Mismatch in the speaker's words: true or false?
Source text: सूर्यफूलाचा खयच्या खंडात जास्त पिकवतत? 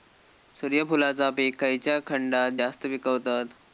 true